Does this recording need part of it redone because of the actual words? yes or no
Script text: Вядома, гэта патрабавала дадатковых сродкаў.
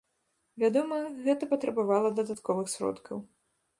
no